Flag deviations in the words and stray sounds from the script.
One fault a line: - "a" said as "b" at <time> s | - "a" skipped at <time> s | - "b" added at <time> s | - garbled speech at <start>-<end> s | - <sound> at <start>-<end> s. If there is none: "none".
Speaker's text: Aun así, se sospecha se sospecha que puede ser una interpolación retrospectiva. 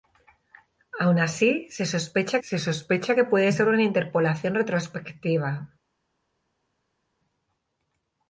none